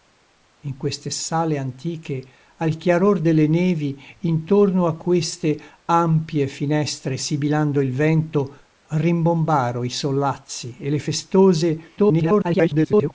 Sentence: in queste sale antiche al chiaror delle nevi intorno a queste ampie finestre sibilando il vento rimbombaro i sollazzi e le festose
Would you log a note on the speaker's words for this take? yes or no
yes